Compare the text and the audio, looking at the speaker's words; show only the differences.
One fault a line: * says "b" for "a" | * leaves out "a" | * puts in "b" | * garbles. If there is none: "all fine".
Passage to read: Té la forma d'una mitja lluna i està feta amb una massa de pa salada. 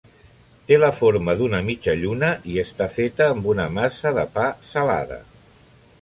all fine